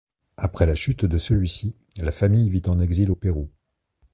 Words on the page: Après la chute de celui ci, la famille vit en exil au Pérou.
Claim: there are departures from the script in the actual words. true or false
false